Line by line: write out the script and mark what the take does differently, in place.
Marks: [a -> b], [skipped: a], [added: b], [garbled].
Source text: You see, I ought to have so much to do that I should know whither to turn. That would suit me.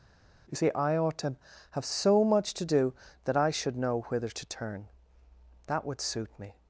You see, I ought to have so much to do that I should know whither to turn. That would suit me.